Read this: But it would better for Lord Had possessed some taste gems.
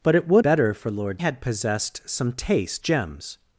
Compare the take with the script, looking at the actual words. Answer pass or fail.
pass